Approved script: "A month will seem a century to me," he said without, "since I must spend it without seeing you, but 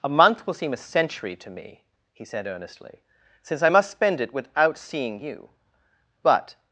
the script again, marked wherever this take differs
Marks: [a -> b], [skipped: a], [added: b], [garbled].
"A month will seem a century to me," he said [without, -> earnestly] "since I must spend it without seeing you, but